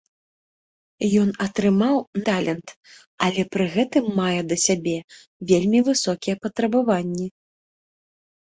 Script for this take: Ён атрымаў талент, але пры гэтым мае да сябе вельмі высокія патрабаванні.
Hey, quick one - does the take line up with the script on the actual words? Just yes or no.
yes